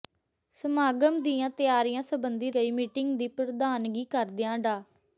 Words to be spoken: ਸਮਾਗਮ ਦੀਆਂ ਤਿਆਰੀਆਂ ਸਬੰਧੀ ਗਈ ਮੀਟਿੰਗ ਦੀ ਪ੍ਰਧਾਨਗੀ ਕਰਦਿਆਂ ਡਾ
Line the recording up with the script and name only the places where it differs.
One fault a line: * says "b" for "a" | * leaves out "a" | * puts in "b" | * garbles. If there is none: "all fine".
all fine